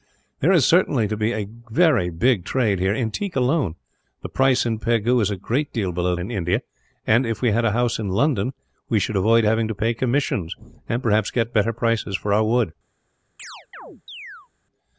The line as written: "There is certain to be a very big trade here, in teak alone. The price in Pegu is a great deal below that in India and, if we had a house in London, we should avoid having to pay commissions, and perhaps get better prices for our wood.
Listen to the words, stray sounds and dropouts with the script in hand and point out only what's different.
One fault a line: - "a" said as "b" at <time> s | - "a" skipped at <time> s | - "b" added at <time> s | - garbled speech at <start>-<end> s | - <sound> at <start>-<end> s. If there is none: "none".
- "that" skipped at 6.2 s
- chirp at 13.4-14.5 s